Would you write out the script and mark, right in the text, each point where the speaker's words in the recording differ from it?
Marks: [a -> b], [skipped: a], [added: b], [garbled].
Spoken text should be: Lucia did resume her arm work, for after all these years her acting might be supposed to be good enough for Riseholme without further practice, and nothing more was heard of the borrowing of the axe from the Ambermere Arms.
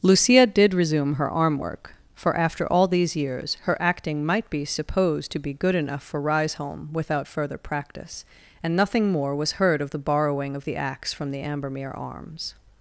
Lucia did resume her arm work, for after all these years her acting might be supposed to be good enough for Riseholme without further practice, and nothing more was heard of the borrowing of the axe from the Ambermere Arms.